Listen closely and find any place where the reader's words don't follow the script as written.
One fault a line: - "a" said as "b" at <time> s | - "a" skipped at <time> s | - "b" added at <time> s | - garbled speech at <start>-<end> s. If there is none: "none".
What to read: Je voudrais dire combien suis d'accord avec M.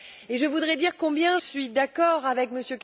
none